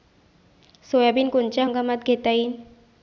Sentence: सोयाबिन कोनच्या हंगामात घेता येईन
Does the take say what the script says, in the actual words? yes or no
yes